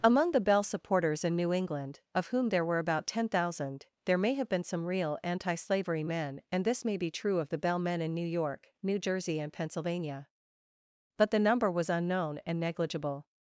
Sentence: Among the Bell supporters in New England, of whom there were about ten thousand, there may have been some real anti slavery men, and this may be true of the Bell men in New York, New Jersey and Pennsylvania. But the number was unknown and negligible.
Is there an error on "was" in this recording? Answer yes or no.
no